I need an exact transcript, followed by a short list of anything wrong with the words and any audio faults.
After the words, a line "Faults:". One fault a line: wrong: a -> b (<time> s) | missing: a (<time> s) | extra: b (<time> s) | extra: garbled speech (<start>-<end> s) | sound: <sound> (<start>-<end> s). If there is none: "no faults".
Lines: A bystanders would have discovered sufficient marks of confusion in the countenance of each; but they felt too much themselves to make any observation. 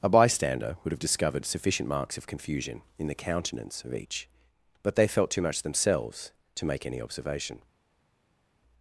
A bystander would have discovered sufficient marks of confusion in the countenance of each; but they felt too much themselves to make any observation.
Faults:
wrong: bystanders -> bystander (0.1 s)